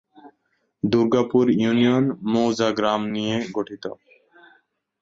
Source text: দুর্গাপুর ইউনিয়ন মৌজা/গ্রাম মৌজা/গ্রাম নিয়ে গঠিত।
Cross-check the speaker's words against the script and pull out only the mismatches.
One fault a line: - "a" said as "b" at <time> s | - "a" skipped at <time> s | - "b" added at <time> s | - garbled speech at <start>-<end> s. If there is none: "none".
- "মৌজা/গ্রাম" skipped at 3.0 s